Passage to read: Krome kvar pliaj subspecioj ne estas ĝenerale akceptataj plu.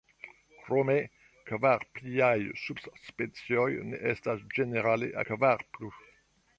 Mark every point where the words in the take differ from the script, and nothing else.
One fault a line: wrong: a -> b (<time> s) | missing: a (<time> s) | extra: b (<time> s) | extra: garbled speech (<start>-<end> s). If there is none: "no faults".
wrong: akceptataj -> kvar (5.3 s)